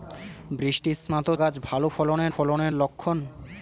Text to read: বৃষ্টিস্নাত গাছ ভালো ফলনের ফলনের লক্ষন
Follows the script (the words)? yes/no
yes